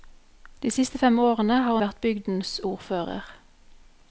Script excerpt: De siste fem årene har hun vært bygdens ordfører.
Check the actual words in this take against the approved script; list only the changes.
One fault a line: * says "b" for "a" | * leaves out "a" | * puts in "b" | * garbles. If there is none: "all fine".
* leaves out "hun"